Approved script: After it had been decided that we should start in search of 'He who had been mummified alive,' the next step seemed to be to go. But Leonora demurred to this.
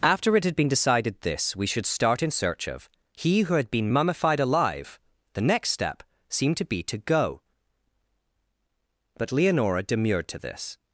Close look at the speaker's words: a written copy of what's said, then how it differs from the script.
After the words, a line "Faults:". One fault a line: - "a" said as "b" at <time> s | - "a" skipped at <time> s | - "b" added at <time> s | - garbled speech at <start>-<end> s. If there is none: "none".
After it had been decided this we should start in search of 'He who had been mummified alive,' the next step seemed to be to go. But Leonora demurred to this.
Faults:
- "that" said as "this" at 1.2 s